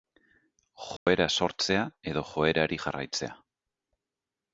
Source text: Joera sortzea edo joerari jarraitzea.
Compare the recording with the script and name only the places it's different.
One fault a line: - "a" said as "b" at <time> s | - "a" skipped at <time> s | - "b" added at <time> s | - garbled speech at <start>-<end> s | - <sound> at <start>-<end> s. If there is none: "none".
- dropout at 1.0-1.1 s